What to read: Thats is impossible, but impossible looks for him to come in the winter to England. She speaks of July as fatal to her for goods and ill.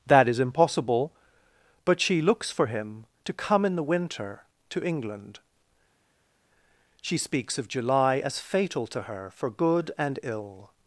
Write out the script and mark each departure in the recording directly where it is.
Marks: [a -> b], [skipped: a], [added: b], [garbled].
[Thats -> That] is impossible, but [impossible -> she] looks for him to come in the winter to England. She speaks of July as fatal to her for [goods -> good] and ill.